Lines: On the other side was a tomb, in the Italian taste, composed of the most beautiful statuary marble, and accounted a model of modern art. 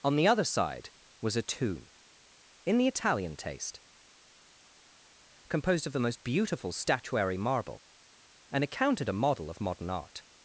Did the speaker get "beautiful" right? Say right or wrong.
right